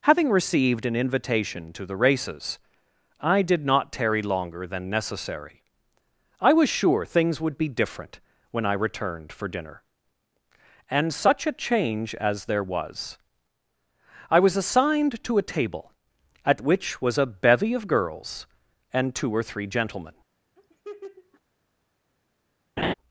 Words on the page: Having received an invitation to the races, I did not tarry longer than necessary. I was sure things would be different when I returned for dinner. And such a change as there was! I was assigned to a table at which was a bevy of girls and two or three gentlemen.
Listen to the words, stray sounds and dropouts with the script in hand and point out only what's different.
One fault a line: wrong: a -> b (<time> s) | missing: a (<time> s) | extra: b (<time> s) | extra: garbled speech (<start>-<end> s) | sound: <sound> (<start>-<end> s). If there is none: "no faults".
sound: laugh (20.6-21.4 s)
sound: laugh (22.8-22.9 s)